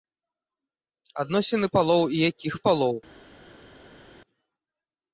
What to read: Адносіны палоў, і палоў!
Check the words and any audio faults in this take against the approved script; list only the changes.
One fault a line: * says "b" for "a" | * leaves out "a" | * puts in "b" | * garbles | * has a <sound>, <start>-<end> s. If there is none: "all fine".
* puts in "якіх"